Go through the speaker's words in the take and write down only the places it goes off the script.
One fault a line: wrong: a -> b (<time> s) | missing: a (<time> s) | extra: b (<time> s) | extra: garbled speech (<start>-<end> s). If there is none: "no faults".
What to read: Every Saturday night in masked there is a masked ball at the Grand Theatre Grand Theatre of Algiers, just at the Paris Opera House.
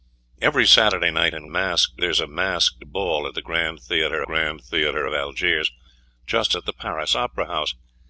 no faults